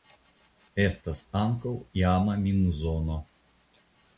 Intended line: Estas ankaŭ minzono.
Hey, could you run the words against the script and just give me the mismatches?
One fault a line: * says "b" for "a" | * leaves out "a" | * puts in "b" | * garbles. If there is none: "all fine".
* puts in "iama"